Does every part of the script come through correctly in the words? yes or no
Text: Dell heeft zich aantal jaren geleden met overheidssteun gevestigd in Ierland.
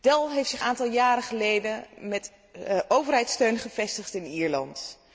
yes